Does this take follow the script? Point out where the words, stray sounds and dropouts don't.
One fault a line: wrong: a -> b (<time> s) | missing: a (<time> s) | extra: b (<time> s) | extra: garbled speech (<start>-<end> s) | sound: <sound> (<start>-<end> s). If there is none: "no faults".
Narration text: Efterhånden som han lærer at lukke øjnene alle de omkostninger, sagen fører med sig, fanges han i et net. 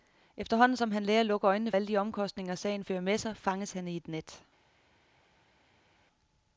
no faults